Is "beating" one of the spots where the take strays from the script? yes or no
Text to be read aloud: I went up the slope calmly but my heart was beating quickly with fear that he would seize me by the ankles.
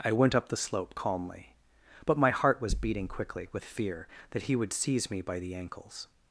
no